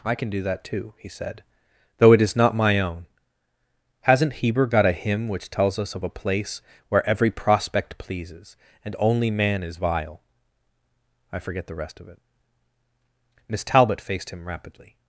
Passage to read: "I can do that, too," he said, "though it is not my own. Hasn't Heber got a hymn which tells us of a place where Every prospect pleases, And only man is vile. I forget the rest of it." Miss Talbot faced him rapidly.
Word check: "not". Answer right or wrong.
right